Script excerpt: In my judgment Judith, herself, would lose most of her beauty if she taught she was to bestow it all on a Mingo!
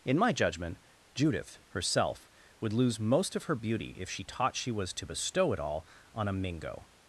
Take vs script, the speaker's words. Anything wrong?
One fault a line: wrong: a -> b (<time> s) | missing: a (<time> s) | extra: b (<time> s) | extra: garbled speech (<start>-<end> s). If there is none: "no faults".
no faults